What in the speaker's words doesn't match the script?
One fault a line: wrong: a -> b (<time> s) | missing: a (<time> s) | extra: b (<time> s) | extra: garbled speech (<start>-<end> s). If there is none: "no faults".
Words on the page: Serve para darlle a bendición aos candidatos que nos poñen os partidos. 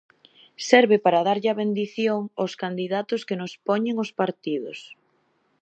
no faults